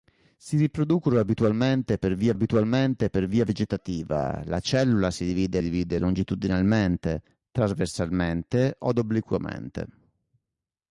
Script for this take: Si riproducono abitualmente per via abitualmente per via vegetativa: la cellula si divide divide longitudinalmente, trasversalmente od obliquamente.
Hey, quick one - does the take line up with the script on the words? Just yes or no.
yes